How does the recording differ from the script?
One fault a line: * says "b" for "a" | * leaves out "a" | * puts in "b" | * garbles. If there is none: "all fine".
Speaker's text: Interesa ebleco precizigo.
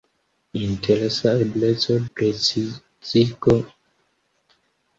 all fine